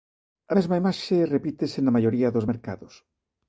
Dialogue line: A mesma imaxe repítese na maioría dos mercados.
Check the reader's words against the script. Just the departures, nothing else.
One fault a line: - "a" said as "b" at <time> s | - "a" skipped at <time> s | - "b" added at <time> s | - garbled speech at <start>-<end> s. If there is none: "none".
none